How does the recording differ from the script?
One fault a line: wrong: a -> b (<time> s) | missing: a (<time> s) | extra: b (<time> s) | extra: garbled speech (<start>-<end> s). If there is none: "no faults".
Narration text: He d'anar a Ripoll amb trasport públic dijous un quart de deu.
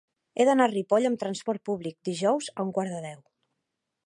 extra: a (2.5 s)